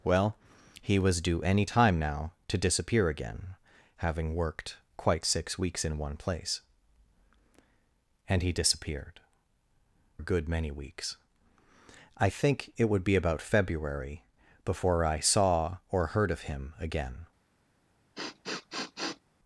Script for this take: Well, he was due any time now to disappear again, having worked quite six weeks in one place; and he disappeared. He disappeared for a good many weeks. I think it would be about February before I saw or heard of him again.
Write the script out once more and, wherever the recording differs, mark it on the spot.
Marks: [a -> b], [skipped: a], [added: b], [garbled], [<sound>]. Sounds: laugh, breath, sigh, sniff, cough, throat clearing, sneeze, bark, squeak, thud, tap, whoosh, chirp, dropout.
Well, he was due any time now to disappear again, having worked quite six weeks in one place; and he disappeared. [skipped: He disappeared for] a good many weeks. I think it would be about February before I saw or heard of him again. [sniff]